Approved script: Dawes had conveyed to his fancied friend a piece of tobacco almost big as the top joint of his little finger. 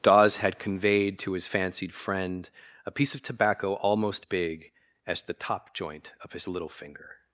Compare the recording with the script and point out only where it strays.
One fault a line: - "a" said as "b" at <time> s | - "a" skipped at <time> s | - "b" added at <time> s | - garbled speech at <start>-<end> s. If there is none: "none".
none